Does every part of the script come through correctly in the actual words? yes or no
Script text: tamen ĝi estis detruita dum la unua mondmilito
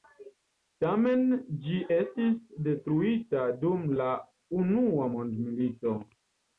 yes